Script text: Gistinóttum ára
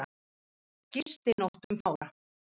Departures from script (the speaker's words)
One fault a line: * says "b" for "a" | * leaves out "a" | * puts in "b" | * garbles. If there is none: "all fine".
all fine